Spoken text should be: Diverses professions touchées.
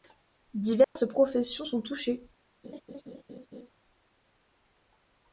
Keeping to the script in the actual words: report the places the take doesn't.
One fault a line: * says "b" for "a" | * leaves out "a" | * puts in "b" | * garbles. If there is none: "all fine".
* puts in "sont"